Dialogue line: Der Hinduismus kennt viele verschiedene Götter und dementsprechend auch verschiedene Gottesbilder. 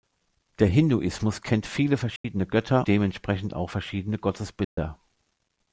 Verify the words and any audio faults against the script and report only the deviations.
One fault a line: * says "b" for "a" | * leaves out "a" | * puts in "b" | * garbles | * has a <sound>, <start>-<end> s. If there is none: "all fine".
* has a dropout, 2.2-2.2 s
* leaves out "und"
* has a dropout, 4.6-4.8 s